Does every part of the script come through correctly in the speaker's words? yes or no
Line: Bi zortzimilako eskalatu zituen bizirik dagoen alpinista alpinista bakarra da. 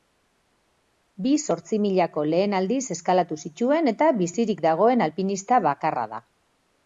no